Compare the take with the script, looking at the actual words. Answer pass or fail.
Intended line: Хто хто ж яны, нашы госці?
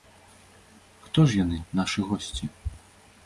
fail